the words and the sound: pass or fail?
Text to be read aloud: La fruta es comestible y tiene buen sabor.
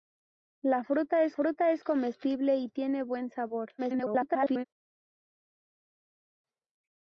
fail